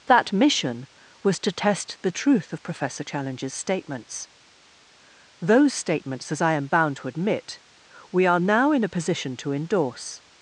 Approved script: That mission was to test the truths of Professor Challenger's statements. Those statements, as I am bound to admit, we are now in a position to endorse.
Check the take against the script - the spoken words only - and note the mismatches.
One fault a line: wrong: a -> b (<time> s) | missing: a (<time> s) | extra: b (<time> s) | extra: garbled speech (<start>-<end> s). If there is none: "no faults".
wrong: truths -> truth (2.1 s)